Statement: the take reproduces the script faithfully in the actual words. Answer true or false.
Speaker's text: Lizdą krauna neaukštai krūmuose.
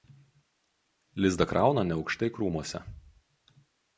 true